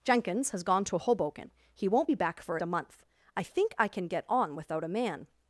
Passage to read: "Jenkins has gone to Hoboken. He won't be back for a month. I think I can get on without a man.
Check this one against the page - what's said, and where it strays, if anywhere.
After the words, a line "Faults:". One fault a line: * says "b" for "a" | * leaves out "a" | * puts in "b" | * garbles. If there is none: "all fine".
"Jenkins has gone to Hoboken. He won't be back for a month. I think I can get on without a man.
Faults:
all fine